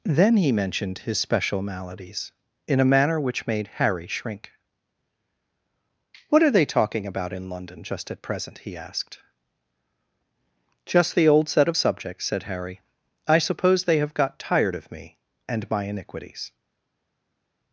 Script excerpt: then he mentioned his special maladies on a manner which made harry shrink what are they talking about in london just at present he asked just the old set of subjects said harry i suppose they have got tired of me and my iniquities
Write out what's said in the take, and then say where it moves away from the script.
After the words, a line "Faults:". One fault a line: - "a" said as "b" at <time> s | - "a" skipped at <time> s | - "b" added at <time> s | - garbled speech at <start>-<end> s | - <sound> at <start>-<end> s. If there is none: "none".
then he mentioned his special maladies in a manner which made harry shrink what are they talking about in london just at present he asked just the old set of subjects said harry i suppose they have got tired of me and my iniquities
Faults:
- "on" said as "in" at 2.7 s